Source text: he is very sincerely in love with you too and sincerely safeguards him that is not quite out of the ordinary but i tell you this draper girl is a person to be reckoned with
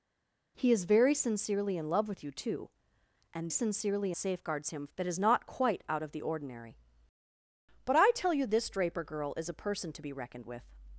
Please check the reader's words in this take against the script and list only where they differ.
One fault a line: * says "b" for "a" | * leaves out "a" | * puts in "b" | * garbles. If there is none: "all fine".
all fine